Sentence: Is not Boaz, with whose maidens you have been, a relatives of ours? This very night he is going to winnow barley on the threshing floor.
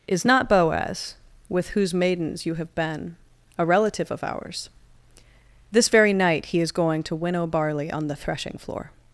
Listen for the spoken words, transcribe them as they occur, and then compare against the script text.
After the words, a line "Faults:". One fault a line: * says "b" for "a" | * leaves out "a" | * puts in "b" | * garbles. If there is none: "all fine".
Is not Boaz, with whose maidens you have been, a relative of ours? This very night he is going to winnow barley on the threshing floor.
Faults:
* says "relative" for "relatives"